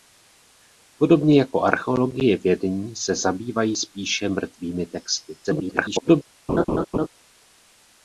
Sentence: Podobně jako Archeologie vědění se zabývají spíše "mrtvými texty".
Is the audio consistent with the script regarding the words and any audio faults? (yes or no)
no